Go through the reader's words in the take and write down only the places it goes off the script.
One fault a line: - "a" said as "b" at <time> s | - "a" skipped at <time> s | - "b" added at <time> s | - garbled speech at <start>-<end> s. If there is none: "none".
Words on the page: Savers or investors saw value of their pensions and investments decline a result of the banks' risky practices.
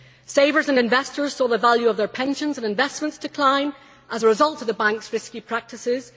- "or" said as "and" at 0.7 s
- "the" added at 1.5 s
- "as" added at 4.1 s